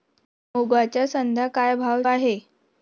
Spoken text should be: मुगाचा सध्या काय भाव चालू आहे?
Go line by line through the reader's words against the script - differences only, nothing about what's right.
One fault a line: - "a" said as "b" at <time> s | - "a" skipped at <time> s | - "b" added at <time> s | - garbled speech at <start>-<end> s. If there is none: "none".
- "चालू" skipped at 2.0 s